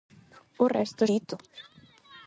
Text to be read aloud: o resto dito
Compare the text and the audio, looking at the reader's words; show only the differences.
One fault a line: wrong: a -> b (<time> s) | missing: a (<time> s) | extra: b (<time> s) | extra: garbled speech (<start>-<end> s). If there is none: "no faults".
no faults